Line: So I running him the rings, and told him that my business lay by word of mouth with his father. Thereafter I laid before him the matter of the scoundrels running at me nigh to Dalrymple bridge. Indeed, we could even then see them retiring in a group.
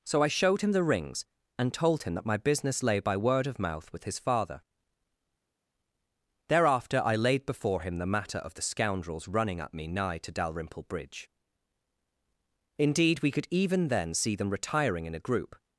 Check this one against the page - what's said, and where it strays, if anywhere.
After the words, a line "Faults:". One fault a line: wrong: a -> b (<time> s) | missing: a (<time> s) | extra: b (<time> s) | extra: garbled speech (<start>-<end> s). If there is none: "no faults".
So I showed him the rings, and told him that my business lay by word of mouth with his father. Thereafter I laid before him the matter of the scoundrels running at me nigh to Dalrymple bridge. Indeed, we could even then see them retiring in a group.
Faults:
wrong: running -> showed (0.3 s)